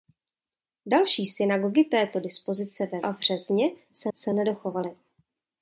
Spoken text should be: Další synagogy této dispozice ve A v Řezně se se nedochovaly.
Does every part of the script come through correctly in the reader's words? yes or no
yes